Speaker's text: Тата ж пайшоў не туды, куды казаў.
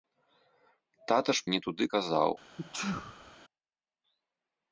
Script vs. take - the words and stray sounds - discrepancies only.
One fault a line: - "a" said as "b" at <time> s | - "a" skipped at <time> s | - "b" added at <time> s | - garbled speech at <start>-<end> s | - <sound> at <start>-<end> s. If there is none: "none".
- "пайшоў" skipped at 1.4 s
- "куды" skipped at 1.8 s
- sneeze at 2.6-3.4 s